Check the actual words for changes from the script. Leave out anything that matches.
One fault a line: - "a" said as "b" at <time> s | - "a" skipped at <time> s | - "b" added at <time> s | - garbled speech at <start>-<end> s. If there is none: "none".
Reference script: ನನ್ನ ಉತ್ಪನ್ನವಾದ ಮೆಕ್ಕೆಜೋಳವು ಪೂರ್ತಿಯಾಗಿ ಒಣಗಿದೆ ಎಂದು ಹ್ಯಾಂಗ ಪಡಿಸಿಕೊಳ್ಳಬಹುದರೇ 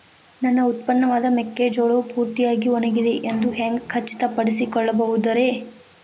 - "ಖಚಿತ" added at 3.9 s